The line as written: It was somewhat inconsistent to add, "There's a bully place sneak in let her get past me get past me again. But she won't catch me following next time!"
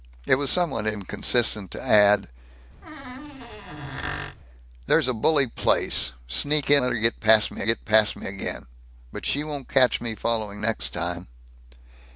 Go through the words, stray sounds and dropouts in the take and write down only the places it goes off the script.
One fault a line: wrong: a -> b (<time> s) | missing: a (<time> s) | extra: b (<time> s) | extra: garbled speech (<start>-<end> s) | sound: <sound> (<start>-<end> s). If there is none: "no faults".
sound: squeak (2.8-4.4 s)